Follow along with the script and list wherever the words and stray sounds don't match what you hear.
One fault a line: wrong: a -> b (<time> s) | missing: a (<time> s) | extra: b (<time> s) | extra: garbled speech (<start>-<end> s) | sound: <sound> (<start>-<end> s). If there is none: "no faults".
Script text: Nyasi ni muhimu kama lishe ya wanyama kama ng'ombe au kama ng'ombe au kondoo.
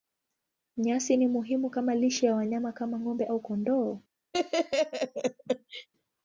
missing: kama ng'ombe au (3.4 s)
sound: laugh (4.3-5.9 s)